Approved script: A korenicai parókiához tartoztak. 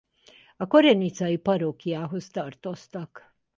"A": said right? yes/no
yes